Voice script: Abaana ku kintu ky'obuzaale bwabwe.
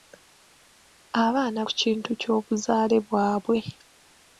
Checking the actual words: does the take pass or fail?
pass